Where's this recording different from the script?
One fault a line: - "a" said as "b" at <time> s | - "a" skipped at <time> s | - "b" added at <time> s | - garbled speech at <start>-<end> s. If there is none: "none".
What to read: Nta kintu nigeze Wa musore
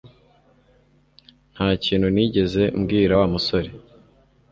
- "mbwira" added at 2.8 s